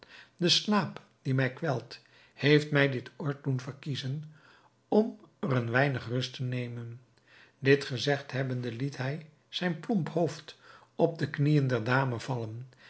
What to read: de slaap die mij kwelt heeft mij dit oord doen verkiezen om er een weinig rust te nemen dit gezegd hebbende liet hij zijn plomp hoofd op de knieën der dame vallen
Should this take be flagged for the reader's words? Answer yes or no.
no